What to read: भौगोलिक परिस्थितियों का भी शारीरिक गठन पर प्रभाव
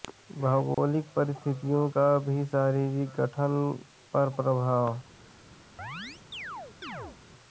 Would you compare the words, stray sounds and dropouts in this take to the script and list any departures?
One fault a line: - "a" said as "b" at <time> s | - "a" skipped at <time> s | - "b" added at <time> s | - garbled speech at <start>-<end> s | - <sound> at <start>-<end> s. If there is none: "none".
- dropout at 0.7-0.8 s
- chirp at 5.8-7.2 s